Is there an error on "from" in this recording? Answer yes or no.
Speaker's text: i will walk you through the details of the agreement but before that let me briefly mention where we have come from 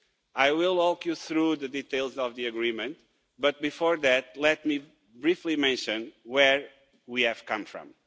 no